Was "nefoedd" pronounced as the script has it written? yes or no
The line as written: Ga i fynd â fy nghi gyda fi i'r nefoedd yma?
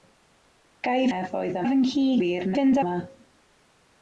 no